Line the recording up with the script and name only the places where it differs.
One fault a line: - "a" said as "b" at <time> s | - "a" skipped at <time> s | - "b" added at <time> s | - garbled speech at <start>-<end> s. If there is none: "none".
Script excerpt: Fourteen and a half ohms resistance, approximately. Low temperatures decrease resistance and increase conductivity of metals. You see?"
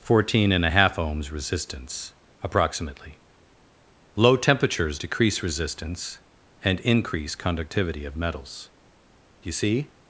none